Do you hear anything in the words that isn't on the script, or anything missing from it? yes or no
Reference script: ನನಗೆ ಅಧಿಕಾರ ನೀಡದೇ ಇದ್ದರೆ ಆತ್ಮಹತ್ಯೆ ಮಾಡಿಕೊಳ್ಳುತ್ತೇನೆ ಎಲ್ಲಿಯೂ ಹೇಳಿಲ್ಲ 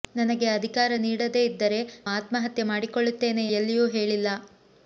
no